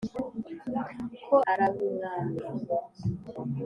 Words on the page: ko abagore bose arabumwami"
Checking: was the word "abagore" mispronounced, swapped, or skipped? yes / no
yes